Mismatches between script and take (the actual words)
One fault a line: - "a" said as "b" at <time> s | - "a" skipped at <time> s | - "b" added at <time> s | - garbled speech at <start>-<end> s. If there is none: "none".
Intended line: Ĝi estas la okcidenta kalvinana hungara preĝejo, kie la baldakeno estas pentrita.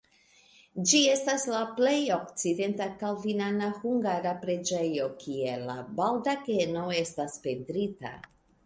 - "plej" added at 1.8 s